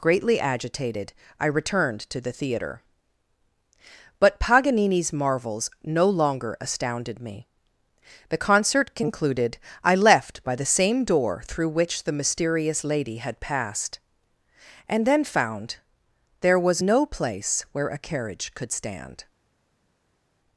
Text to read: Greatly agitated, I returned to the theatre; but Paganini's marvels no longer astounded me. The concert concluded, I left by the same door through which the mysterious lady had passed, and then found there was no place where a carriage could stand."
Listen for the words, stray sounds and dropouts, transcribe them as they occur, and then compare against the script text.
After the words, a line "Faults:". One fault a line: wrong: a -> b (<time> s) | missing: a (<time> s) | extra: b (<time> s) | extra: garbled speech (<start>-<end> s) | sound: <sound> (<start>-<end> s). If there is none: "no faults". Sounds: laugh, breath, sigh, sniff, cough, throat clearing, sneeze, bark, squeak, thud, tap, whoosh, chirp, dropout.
Greatly agitated, I returned to the theatre; but Paganini's marvels no longer astounded me. The concert concluded, I left by the same door through which the mysterious lady had passed, and then found there was no place where a carriage could stand."
Faults:
no faults